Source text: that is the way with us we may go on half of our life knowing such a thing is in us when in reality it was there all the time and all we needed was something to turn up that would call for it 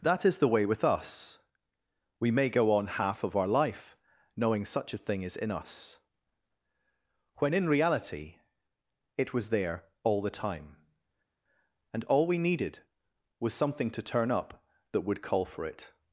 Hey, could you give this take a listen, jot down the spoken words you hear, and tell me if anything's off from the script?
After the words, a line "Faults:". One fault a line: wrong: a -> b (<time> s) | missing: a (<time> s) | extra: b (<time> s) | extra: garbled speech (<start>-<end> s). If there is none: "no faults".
that is the way with us we may go on half of our life knowing such a thing is in us when in reality it was there all the time and all we needed was something to turn up that would call for it
Faults:
no faults